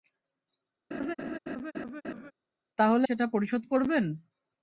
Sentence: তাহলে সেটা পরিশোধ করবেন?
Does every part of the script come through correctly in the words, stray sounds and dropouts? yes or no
no